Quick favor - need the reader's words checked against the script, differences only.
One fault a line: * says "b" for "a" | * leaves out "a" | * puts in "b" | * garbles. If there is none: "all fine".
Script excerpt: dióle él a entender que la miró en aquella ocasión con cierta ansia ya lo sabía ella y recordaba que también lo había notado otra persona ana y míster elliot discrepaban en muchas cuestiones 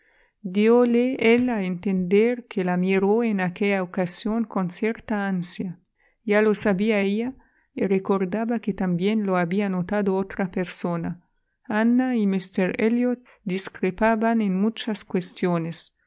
all fine